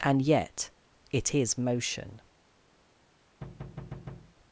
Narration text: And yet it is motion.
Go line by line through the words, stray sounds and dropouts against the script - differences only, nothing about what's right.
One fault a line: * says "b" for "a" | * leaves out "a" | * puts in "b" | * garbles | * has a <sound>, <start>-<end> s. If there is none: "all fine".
* has a thud, 3.4-4.4 s